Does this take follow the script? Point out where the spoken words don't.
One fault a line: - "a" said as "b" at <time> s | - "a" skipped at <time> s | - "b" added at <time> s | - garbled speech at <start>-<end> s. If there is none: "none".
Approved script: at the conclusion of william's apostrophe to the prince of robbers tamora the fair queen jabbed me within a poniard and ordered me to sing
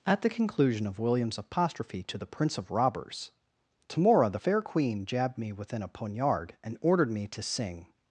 none